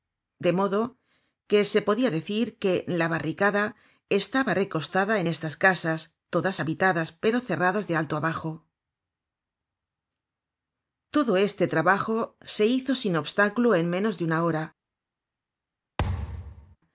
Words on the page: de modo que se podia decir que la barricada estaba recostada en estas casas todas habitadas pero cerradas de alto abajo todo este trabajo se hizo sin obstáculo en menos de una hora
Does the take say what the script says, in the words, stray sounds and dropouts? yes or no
no